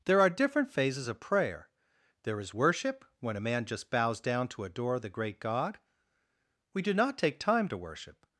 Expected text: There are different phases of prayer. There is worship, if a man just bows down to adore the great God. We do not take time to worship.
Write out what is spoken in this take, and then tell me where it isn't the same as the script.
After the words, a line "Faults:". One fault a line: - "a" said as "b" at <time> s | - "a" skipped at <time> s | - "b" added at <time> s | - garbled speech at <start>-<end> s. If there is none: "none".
There are different phases of prayer. There is worship, when a man just bows down to adore the great God. We do not take time to worship.
Faults:
- "if" said as "when" at 3.2 s